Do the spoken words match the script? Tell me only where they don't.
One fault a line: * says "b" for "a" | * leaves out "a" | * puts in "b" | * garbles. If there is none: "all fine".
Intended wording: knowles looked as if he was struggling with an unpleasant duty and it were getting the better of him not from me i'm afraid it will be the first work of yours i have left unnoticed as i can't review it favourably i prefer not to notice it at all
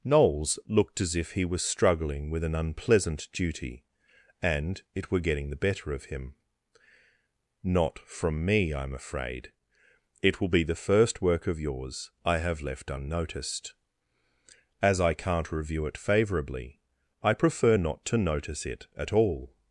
all fine